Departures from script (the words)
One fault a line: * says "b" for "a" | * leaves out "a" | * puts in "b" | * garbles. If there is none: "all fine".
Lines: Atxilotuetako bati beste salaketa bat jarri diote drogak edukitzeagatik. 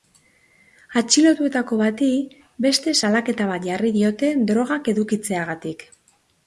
all fine